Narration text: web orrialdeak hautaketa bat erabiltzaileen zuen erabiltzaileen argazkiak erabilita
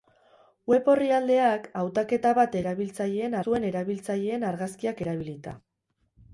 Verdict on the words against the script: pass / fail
pass